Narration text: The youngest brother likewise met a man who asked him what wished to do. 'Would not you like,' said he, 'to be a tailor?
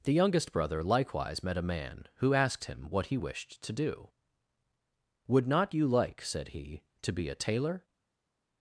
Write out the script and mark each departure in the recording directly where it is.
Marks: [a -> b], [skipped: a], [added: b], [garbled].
The youngest brother likewise met a man who asked him what [added: he] wished to do. 'Would not you like,' said he, 'to be a tailor?